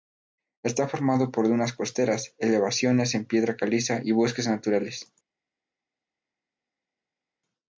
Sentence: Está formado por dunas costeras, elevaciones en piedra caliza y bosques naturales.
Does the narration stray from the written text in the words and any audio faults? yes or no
no